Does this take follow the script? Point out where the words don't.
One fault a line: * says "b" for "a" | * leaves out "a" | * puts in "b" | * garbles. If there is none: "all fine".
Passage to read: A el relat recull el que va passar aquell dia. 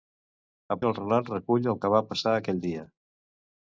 all fine